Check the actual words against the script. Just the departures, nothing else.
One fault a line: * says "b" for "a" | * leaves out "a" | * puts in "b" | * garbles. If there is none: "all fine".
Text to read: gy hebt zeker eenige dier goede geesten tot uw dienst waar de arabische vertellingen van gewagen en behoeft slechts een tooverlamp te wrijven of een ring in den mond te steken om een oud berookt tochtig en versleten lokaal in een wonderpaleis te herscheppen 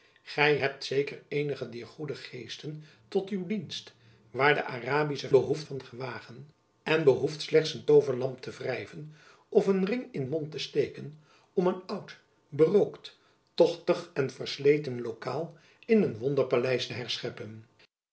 * says "behoeft" for "vertellingen"
* leaves out "den"